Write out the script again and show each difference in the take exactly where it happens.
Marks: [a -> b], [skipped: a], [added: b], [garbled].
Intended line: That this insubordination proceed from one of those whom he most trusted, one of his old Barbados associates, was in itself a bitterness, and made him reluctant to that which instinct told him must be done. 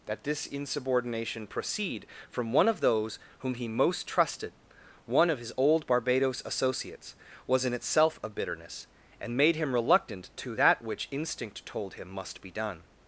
That this insubordination proceed from one of those whom he most trusted, one of his old Barbados associates, was in itself a bitterness, and made him reluctant to that which instinct told him must be done.